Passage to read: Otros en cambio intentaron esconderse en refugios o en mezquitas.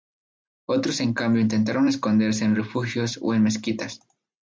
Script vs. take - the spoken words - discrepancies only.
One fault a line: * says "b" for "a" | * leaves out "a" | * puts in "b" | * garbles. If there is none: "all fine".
all fine